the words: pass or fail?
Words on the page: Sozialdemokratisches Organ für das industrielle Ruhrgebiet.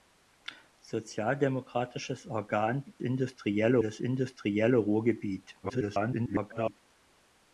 fail